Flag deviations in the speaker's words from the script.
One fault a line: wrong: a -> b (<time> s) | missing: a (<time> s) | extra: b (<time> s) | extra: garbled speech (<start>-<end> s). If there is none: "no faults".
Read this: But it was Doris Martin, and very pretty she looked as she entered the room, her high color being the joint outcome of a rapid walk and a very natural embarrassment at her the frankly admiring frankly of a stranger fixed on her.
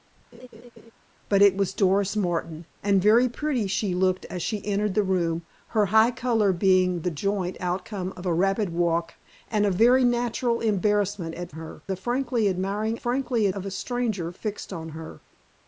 no faults